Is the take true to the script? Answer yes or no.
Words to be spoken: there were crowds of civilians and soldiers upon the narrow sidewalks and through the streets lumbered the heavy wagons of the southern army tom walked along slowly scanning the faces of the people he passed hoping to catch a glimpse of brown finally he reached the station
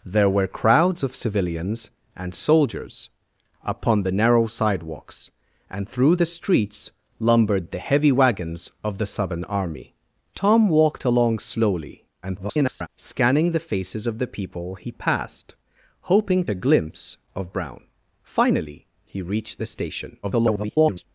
no